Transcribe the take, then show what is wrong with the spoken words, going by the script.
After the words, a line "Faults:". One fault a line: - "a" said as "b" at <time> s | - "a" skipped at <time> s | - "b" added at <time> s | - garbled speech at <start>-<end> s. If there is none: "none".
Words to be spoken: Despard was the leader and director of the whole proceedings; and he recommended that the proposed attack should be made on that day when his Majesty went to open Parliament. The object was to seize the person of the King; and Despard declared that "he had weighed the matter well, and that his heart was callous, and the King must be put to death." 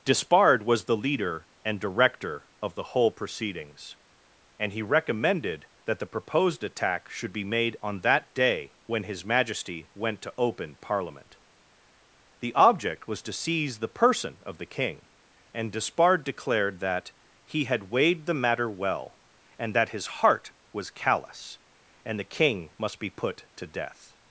Despard was the leader and director of the whole proceedings; and he recommended that the proposed attack should be made on that day when his Majesty went to open Parliament. The object was to seize the person of the King; and Despard declared that "he had weighed the matter well, and that his heart was callous, and the King must be put to death."
Faults:
none